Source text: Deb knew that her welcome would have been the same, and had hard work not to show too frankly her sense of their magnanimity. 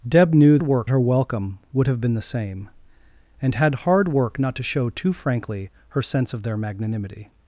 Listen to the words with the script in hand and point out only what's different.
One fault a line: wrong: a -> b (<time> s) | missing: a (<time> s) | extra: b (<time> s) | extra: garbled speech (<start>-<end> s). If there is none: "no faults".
wrong: that -> work (0.6 s)